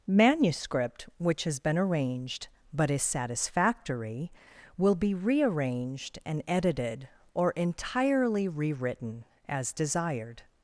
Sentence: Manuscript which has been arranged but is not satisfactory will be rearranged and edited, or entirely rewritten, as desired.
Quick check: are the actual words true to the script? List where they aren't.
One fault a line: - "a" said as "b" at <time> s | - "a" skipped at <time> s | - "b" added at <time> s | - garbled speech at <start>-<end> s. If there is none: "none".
- "not" skipped at 3.0 s